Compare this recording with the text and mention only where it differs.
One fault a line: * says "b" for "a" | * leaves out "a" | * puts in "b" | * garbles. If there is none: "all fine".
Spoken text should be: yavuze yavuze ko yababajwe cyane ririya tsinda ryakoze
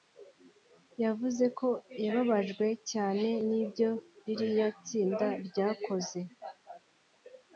* leaves out "yavuze"
* puts in "n'ibyo"